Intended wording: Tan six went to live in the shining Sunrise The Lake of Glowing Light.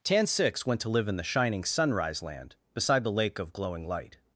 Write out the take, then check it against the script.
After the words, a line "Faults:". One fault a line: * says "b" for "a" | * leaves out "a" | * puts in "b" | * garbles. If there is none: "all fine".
Tan six went to live in the shining Sunrise Land, beside the Lake of Glowing Light.
Faults:
* puts in "Land beside"